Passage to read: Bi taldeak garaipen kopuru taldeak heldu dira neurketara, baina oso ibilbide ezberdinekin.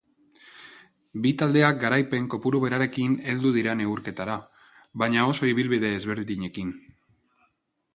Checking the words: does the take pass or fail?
fail